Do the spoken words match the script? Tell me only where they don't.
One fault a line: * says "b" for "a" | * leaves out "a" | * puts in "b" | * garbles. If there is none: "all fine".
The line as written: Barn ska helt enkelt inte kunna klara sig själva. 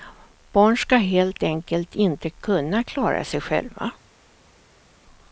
all fine